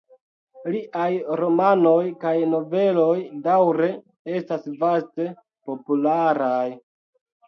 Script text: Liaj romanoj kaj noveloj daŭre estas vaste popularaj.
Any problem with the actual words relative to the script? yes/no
no